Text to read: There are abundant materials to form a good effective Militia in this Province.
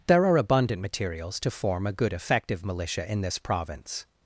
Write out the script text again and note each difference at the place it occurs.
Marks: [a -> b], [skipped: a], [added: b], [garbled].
There are abundant materials to form a good effective Militia in this Province.